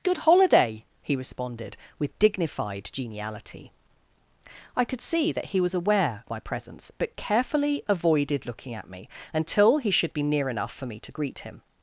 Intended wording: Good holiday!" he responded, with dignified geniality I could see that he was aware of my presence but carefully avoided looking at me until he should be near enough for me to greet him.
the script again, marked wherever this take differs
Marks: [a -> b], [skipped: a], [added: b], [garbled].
Good holiday!" he responded, with dignified geniality I could see that he was aware [skipped: of] my presence but carefully avoided looking at me until he should be near enough for me to greet him.